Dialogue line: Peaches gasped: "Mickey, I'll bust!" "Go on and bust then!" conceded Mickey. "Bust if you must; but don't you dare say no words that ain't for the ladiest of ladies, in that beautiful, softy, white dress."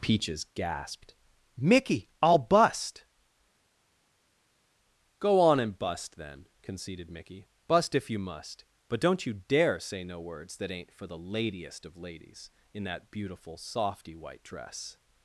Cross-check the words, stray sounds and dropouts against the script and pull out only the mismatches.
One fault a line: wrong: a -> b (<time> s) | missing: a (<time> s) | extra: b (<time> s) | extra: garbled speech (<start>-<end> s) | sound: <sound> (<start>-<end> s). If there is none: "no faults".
no faults